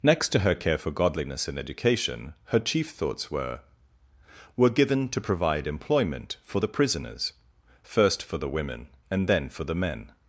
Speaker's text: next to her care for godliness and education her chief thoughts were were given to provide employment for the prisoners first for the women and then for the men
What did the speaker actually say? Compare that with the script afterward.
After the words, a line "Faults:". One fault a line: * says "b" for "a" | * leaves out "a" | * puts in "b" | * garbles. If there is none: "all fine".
next to her care for godliness and education her chief thoughts were were given to provide employment for the prisoners first for the women and then for the men
Faults:
all fine